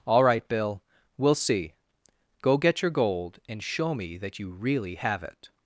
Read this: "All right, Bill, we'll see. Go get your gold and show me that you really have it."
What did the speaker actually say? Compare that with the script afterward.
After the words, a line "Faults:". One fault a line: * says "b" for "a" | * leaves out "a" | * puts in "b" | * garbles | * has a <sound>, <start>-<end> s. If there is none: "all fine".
"All right, Bill, we'll see. Go get your gold and show me that you really have it."
Faults:
all fine